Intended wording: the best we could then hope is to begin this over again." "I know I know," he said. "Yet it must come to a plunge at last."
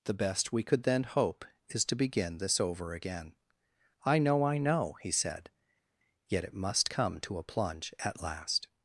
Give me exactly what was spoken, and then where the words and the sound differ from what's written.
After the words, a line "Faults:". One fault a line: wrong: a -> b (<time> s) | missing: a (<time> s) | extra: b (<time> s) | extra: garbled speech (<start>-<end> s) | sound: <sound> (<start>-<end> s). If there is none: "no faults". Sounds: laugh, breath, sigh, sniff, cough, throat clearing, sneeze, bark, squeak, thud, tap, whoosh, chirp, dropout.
the best we could then hope is to begin this over again." "I know I know," he said. "Yet it must come to a plunge at last."
Faults:
no faults